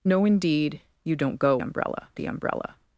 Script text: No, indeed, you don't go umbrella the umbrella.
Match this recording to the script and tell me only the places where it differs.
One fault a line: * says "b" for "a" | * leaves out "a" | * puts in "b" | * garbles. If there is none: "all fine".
all fine